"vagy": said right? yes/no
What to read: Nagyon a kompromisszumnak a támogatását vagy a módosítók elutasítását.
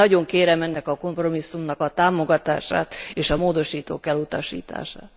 no